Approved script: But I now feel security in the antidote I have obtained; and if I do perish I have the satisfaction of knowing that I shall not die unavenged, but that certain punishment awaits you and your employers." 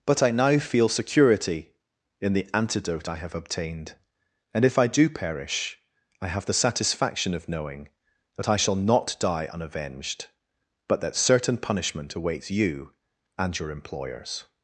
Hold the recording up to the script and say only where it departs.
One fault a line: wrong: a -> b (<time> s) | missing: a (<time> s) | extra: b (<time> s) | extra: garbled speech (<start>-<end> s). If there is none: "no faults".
no faults